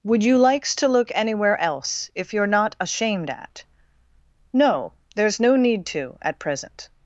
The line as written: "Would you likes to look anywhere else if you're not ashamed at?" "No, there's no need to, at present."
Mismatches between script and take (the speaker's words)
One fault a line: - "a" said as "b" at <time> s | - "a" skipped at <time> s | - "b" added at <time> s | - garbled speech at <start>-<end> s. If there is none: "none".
none